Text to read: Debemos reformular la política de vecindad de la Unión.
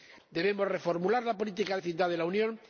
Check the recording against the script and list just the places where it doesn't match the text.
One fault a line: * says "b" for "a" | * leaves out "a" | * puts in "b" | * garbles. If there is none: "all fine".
* leaves out "de"